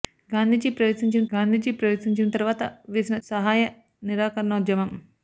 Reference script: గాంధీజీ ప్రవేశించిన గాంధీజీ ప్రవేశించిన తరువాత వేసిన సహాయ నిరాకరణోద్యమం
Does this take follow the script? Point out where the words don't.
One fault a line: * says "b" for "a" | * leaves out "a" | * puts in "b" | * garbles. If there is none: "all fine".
all fine